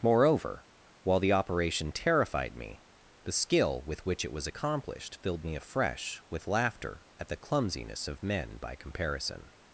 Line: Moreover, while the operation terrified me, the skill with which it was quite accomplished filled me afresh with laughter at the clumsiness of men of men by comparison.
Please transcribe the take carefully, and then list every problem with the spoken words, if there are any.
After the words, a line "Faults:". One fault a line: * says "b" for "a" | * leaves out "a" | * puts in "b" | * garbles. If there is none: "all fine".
Moreover, while the operation terrified me, the skill with which it was accomplished filled me afresh with laughter at the clumsiness of men by comparison.
Faults:
* leaves out "quite"
* leaves out "of men"